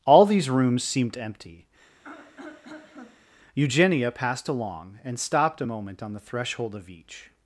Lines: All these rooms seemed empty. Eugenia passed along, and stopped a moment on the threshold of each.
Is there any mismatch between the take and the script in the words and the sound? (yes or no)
yes